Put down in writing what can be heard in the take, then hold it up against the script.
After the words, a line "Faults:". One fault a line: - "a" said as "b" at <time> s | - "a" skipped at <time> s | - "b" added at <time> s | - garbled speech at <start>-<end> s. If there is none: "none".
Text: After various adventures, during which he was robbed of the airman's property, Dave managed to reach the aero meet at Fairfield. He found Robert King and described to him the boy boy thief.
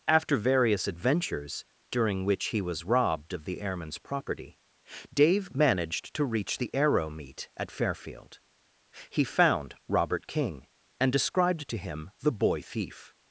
After various adventures, during which he was robbed of the airman's property, Dave managed to reach the aero meet at Fairfield. He found Robert King and described to him the boy thief.
Faults:
- "boy" skipped at 12.6 s